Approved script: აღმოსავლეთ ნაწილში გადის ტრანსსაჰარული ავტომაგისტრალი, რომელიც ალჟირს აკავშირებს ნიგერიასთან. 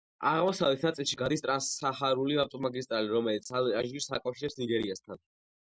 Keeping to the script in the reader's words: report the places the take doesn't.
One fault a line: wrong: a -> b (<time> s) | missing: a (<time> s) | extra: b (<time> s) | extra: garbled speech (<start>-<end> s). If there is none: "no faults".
no faults